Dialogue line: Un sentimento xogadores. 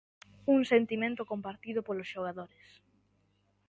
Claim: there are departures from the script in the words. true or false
true